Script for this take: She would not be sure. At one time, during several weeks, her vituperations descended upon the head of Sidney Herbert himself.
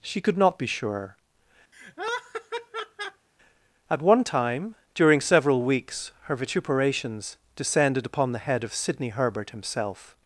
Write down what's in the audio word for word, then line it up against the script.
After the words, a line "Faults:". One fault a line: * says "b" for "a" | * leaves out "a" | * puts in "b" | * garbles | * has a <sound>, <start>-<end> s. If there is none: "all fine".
She could not be sure. At one time, during several weeks, her vituperations descended upon the head of Sidney Herbert himself.
Faults:
* says "could" for "would"
* has a laugh, 1.7-3.3 s